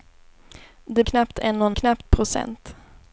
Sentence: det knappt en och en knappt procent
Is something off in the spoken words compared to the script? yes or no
no